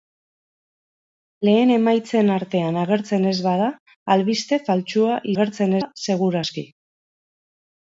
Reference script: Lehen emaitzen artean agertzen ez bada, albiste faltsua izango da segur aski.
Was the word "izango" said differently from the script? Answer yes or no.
yes